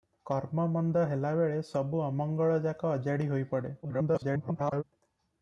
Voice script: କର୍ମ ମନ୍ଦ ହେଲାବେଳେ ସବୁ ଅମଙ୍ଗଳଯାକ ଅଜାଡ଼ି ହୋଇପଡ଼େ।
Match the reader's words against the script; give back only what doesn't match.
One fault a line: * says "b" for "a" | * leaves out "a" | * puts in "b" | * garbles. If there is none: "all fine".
* garbles